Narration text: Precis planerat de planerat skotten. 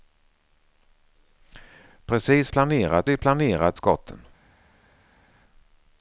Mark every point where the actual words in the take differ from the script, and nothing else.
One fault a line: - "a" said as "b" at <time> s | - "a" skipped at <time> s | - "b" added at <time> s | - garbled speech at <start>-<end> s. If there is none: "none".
none